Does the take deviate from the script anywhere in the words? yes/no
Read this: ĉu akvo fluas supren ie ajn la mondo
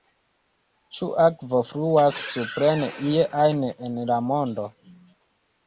yes